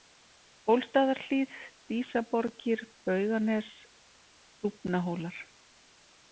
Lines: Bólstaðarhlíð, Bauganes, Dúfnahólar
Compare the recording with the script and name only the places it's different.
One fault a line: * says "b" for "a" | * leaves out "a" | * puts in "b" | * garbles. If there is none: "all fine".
* puts in "Dísaborgir"